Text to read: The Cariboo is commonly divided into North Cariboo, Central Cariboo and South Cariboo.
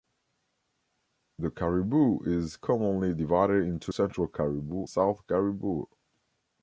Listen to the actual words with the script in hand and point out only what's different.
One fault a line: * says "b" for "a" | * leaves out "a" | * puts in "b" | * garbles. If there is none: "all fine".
* leaves out "North Cariboo"
* leaves out "and"